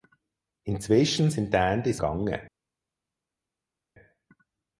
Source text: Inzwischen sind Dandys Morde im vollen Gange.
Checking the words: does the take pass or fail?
fail